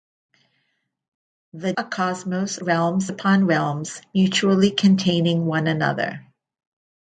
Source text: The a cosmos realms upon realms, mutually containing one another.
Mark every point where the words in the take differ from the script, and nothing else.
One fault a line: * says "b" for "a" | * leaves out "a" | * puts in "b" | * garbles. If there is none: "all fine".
all fine